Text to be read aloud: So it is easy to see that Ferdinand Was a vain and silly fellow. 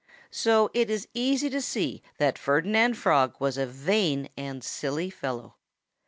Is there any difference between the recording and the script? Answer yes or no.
yes